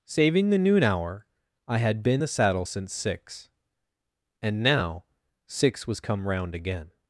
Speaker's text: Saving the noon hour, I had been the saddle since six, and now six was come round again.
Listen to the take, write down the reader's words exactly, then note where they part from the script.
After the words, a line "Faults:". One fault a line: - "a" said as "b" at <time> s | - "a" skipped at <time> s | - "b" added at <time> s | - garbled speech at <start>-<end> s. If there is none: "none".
Saving the noon hour, I had been the saddle since six, and now six was come round again.
Faults:
none